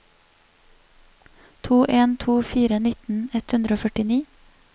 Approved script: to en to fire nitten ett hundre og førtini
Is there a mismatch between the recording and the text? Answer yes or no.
no